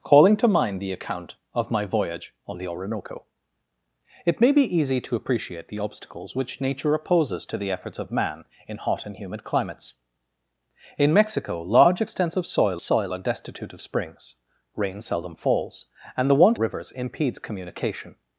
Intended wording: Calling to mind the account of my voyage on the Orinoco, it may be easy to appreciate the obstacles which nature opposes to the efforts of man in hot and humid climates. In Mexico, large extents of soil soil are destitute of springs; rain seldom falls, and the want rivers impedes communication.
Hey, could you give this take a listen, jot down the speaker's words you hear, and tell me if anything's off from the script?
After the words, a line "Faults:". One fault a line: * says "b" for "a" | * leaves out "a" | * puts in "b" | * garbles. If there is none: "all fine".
Calling to mind the account of my voyage on the Orinoco, it may be easy to appreciate the obstacles which nature opposes to the efforts of man in hot and humid climates. In Mexico, large extents of soil soil are destitute of springs; rain seldom falls, and the want rivers impedes communication.
Faults:
all fine